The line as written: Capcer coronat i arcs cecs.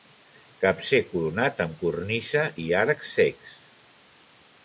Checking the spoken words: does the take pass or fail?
fail